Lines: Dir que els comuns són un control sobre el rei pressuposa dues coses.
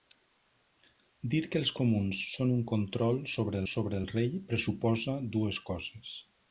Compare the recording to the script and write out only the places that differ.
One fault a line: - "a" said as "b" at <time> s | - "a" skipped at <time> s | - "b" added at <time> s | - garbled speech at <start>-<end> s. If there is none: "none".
- "sobre" added at 3.7 s